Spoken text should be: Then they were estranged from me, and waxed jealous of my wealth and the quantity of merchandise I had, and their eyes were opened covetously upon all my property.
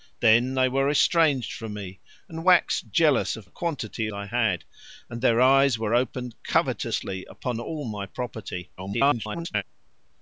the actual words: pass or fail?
fail